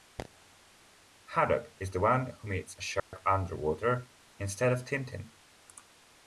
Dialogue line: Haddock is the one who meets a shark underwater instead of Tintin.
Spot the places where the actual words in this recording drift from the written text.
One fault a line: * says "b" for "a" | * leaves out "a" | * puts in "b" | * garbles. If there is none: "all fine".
all fine